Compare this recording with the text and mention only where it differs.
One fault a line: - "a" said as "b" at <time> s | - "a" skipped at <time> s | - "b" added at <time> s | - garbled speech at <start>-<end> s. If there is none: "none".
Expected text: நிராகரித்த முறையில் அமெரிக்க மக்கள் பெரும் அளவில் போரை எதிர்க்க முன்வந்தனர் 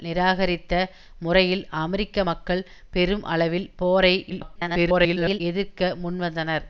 - garbled speech at 4.3-5.4 s